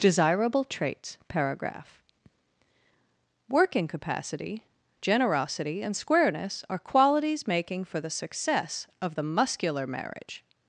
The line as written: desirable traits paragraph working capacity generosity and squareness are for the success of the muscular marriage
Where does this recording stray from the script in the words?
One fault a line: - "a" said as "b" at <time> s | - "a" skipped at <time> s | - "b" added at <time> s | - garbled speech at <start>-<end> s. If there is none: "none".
- "qualities making" added at 6.8 s